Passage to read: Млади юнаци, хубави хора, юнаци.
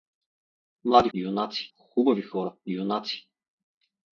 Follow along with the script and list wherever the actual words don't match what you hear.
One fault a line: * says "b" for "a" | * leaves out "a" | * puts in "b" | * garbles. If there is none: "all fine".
all fine